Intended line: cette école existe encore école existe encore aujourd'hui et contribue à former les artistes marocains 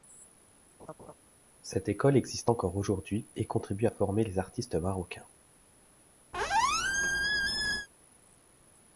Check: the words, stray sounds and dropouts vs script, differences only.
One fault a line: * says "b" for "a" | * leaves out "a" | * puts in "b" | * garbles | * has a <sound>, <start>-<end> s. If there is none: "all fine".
* has a laugh, 0.8-1.1 s
* leaves out "école existe encore"
* has a squeak, 6.3-7.9 s